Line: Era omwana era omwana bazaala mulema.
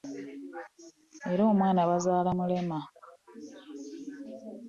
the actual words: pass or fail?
fail